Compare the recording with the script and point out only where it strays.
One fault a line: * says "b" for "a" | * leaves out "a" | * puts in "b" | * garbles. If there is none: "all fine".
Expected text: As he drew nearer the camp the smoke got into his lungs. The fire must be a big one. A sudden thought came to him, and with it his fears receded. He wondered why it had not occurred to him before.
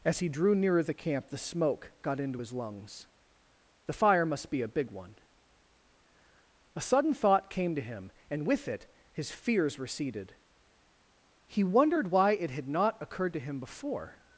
all fine